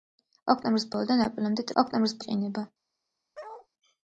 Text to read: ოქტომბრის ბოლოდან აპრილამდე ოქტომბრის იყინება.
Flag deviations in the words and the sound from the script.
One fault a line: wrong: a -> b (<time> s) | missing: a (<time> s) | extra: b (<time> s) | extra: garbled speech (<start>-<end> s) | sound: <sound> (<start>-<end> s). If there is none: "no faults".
sound: bark (3.3-3.7 s)